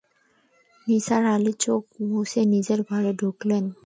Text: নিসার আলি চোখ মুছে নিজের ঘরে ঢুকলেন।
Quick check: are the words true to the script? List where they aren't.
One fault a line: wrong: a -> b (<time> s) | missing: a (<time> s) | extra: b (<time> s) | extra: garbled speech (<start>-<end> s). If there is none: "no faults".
no faults